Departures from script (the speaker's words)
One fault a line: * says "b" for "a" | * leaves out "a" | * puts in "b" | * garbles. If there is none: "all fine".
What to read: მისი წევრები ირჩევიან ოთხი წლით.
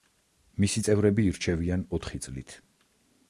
all fine